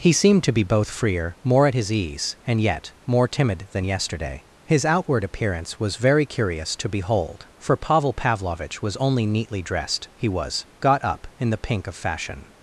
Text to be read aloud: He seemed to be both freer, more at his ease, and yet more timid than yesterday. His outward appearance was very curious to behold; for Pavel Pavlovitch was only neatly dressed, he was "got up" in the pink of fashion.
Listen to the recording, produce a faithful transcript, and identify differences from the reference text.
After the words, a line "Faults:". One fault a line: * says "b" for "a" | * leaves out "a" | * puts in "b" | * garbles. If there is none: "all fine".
He seemed to be both freer, more at his ease, and yet more timid than yesterday. His outward appearance was very curious to behold; for Pavel Pavlovitch was only neatly dressed, he was "got up" in the pink of fashion.
Faults:
all fine